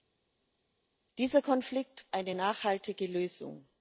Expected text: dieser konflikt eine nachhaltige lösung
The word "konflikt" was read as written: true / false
true